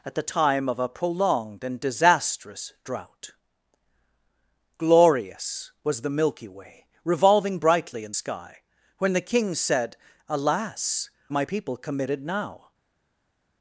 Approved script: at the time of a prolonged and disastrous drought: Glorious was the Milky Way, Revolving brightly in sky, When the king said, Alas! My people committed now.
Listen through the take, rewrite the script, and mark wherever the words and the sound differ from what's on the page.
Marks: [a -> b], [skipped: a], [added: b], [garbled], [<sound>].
at the time of a prolonged and disastrous drought: Glorious was the Milky Way, Revolving brightly in sky, When the king said, Alas! My people committed now.